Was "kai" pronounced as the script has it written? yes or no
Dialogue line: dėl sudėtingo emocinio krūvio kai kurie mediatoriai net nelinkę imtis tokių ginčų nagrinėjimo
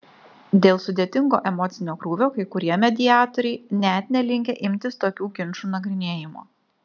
yes